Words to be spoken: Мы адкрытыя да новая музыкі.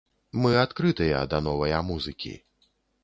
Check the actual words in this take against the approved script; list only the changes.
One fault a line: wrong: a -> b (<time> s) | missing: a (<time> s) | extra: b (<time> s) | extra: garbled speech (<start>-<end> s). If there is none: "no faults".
no faults